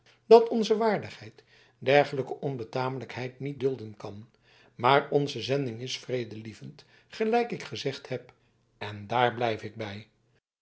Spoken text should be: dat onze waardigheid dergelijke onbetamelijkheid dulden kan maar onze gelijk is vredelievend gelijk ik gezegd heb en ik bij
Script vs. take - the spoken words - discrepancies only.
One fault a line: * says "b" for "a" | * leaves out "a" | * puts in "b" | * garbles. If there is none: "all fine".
* puts in "niet"
* says "zending" for "gelijk"
* puts in "daar blijf"